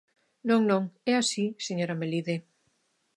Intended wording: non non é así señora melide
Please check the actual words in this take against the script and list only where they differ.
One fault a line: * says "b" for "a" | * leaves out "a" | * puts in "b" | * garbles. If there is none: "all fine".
all fine